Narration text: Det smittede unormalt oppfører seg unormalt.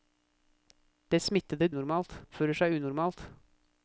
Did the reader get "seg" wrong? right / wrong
right